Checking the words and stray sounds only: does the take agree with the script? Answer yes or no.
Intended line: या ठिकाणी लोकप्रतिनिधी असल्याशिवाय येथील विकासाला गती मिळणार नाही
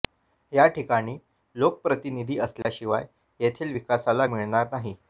no